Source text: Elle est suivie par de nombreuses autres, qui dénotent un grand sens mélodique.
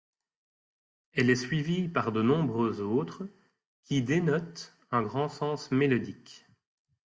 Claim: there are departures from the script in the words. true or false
false